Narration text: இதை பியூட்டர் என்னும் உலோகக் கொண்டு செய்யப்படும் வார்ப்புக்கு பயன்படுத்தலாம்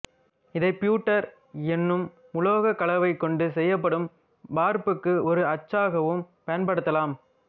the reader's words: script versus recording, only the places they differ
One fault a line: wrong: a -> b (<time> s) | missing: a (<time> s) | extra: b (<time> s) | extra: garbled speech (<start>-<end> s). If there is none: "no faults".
extra: கலவை (2.8 s)
extra: ஒரு அச்சாகவும் (5.3 s)